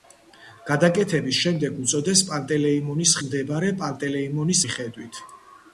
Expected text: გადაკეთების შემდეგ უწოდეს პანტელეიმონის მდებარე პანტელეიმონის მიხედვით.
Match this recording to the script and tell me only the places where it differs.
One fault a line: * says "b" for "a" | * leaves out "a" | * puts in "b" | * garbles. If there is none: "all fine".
all fine